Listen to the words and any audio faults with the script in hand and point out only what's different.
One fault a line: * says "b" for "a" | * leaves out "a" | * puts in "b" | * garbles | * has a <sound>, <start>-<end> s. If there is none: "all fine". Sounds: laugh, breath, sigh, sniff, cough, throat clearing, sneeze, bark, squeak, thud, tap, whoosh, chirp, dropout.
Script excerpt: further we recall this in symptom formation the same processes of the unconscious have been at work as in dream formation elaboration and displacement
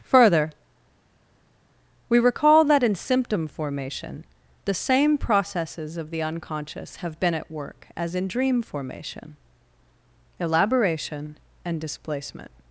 * says "that" for "this"